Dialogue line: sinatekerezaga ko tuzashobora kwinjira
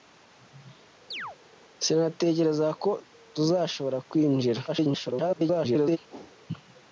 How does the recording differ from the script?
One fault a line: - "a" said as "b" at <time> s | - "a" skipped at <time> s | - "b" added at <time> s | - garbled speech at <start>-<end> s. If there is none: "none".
- garbled speech at 4.7-6.0 s